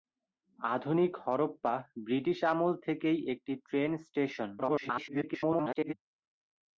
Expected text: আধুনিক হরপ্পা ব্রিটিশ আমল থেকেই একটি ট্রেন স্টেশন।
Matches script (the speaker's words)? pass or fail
fail